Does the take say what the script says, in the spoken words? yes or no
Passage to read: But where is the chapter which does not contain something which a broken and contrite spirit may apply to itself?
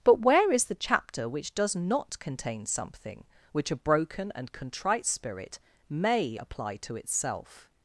yes